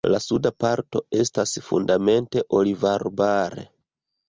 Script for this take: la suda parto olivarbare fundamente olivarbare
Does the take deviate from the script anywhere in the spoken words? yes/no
yes